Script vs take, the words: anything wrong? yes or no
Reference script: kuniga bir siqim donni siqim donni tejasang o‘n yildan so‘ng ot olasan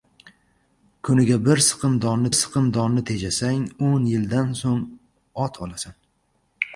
no